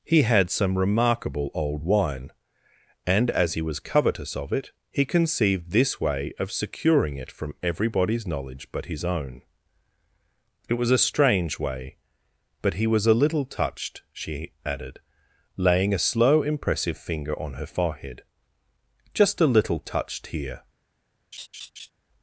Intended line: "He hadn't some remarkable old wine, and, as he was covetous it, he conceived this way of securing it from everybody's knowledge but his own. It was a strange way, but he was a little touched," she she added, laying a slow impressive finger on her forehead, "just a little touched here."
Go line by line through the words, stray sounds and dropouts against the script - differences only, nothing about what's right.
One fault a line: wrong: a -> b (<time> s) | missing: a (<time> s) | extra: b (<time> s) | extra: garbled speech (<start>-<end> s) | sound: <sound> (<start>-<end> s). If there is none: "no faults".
wrong: hadn't -> had (0.2 s)
extra: of (4.4 s)
missing: she (14.5 s)
sound: laugh (21.3-21.9 s)